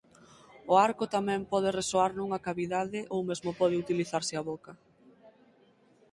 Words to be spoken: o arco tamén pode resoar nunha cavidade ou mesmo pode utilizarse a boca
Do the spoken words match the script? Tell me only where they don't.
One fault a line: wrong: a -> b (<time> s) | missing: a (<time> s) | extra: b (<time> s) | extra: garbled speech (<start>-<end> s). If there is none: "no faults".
no faults